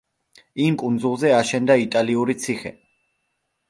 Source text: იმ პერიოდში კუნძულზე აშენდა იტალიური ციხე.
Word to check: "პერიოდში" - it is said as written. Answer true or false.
false